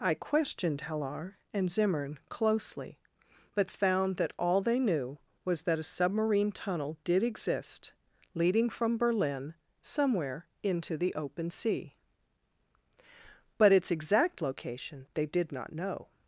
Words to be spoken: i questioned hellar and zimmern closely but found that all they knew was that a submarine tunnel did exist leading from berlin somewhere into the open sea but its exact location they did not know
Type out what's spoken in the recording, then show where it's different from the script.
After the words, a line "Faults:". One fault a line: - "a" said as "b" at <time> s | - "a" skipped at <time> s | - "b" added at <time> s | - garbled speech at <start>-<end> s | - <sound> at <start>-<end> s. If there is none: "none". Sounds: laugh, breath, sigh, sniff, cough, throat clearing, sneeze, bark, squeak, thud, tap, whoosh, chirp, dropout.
i questioned hellar and zimmern closely but found that all they knew was that a submarine tunnel did exist leading from berlin somewhere into the open sea but its exact location they did not know
Faults:
none